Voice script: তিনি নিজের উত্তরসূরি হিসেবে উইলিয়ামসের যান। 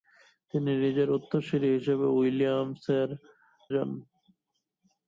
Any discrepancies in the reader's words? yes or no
no